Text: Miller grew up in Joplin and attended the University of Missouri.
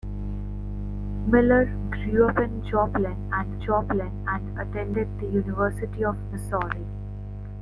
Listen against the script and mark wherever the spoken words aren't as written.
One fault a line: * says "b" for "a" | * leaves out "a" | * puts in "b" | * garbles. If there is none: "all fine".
* puts in "Joplin and"